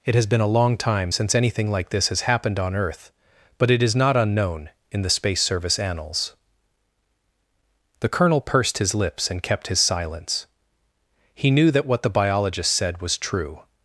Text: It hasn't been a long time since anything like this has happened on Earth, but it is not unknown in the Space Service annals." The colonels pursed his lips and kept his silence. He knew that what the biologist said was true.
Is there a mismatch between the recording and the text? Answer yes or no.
yes